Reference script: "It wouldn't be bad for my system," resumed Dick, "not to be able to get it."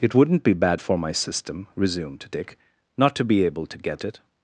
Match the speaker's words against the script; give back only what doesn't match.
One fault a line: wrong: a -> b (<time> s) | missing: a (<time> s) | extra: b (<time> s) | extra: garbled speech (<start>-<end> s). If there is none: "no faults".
no faults